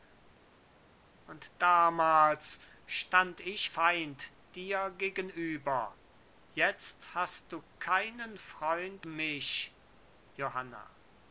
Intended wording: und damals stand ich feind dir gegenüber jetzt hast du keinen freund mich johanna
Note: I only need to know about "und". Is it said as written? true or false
true